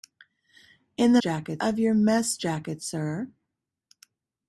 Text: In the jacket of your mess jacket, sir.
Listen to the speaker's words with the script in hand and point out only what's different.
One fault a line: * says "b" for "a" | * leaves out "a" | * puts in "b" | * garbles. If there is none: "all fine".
all fine